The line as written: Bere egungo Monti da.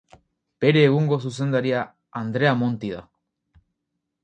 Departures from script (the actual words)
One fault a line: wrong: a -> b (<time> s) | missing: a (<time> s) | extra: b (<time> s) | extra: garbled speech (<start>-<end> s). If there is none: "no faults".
extra: zuzendaria Andrea (1.3 s)